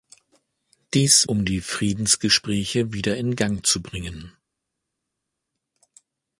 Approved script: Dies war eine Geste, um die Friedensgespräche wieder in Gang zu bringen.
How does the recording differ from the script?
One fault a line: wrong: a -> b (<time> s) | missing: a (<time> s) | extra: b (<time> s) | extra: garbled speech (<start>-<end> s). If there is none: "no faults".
missing: war eine Geste (1.3 s)